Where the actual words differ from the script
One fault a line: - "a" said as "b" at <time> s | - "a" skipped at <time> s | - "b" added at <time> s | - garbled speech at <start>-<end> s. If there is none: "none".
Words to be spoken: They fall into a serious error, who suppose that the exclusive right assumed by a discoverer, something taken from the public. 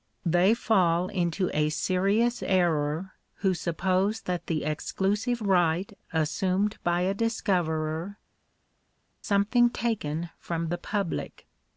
none